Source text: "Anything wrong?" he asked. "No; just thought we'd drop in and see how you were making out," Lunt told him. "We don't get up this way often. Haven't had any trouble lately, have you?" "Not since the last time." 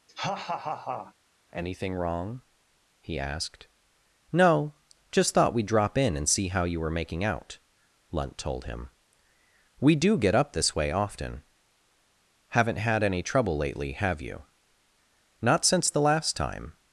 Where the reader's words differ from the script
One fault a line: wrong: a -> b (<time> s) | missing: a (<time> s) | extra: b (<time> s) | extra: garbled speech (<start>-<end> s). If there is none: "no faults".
wrong: don't -> do (9.9 s)